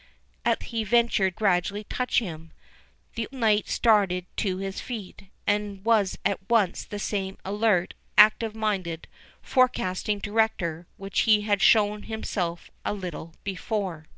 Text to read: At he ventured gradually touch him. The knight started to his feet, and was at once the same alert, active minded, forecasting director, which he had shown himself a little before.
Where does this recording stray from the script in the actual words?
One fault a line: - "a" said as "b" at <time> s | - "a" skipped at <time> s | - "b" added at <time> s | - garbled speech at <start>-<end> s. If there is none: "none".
none